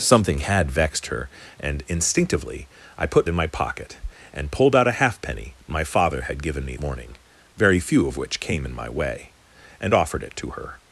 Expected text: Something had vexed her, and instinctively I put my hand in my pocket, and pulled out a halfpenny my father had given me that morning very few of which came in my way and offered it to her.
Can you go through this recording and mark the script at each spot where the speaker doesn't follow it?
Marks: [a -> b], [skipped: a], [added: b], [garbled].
Something had vexed her, and instinctively I put [skipped: my hand] in my pocket, and pulled out a halfpenny my father had given me [skipped: that] morning very few of which came in my way and offered it to her.